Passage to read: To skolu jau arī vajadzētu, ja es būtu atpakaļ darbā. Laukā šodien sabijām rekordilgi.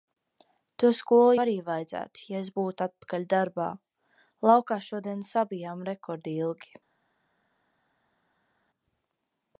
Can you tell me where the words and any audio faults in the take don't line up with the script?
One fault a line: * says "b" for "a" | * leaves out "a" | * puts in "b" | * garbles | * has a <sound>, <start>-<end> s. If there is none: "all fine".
* leaves out "jau"